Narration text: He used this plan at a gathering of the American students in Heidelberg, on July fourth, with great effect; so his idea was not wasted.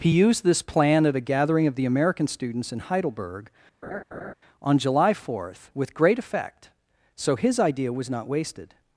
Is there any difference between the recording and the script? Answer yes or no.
no